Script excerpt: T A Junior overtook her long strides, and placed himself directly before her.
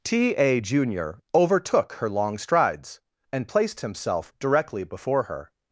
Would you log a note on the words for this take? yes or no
no